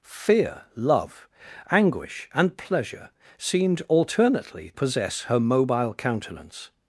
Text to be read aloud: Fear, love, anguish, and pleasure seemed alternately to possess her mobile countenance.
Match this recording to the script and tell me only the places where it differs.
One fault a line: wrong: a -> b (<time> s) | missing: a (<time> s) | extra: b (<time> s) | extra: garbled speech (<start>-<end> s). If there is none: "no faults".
missing: to (4.7 s)